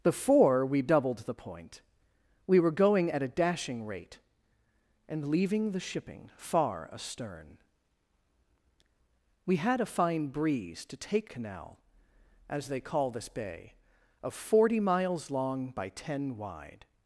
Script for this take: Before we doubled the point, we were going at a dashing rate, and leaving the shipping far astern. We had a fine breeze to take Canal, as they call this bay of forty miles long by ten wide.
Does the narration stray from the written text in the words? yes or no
no